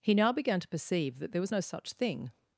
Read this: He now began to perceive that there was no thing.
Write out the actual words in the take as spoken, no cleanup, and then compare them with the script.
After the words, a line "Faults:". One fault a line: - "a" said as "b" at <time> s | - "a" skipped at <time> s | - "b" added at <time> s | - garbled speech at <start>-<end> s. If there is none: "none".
He now began to perceive that there was no such thing.
Faults:
- "such" added at 1.6 s